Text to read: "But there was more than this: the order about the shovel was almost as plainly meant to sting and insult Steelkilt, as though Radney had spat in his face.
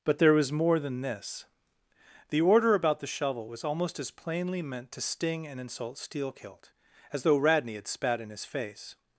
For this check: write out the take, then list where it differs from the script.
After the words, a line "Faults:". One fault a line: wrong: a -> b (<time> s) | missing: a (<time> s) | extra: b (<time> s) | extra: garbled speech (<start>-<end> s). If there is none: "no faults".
"But there was more than this: the order about the shovel was almost as plainly meant to sting and insult Steelkilt, as though Radney had spat in his face.
Faults:
no faults